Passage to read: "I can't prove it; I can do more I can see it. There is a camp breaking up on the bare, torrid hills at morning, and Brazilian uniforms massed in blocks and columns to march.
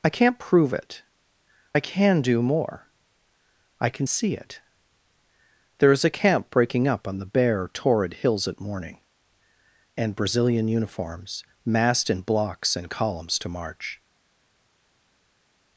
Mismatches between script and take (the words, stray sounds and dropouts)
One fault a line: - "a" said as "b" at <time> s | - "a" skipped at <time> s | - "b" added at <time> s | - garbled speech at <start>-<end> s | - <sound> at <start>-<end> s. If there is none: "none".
none